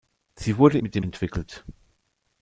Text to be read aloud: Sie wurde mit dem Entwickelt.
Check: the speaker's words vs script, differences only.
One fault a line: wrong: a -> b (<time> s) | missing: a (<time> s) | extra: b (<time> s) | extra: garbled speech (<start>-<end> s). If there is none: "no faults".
no faults